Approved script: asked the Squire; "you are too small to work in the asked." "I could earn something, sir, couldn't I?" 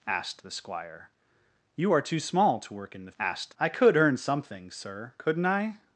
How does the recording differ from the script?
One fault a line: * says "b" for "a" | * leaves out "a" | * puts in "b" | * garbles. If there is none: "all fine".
all fine